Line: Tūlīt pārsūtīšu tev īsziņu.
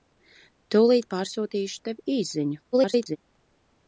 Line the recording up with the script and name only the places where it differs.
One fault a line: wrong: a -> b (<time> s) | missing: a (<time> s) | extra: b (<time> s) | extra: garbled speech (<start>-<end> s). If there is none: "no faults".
extra: garbled speech (2.7-3.2 s)